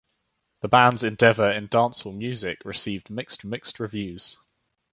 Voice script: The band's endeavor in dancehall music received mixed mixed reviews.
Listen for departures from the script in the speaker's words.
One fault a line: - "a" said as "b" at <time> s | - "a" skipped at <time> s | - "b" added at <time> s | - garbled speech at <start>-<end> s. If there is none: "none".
none